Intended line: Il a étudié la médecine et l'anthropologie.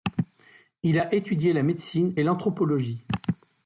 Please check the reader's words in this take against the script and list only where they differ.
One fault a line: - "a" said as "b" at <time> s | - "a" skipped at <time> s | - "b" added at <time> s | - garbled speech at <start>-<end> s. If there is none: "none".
none